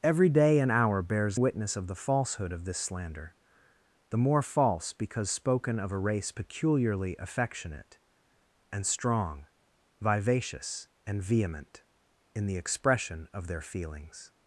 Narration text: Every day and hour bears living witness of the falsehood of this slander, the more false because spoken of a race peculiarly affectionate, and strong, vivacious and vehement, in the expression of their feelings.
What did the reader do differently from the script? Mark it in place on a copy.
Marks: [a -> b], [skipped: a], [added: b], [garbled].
Every day and hour bears [skipped: living] witness of the falsehood of this slander, the more false because spoken of a race peculiarly affectionate, and strong, vivacious and vehement, in the expression of their feelings.